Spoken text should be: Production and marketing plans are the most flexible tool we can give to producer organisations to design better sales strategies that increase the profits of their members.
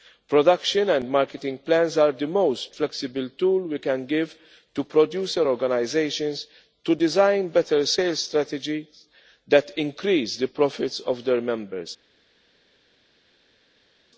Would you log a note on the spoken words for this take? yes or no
no